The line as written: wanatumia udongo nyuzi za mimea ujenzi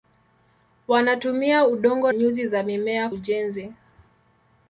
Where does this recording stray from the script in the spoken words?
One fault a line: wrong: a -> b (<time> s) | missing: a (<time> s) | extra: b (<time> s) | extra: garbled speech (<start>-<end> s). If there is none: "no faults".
no faults